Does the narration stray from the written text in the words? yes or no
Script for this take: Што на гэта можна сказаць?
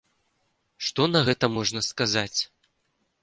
no